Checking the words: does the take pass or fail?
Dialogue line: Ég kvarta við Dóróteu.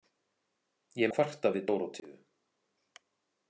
pass